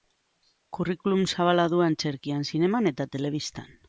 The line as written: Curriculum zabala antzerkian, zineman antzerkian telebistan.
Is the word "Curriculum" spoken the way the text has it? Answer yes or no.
yes